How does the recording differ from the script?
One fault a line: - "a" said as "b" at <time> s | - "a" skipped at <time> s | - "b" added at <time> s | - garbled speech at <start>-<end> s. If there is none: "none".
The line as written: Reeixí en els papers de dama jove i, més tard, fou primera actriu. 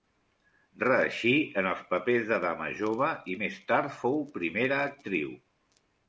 none